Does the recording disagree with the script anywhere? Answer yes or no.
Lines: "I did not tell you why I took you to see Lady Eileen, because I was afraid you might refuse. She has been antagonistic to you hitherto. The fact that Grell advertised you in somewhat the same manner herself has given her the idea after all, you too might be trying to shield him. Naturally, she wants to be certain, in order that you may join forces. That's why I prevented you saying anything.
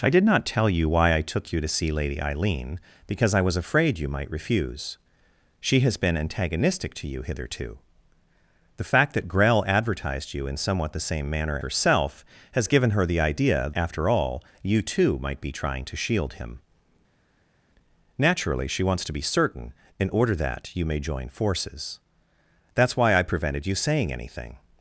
no